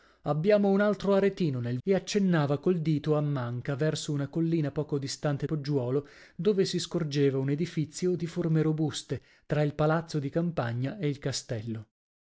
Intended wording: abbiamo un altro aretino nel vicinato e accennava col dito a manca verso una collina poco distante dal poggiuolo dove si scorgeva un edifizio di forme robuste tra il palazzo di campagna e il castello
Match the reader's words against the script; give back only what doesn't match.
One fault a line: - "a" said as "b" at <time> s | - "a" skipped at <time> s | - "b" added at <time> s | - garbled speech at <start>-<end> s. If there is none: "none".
- "vicinato" skipped at 1.8 s
- "dal" skipped at 5.4 s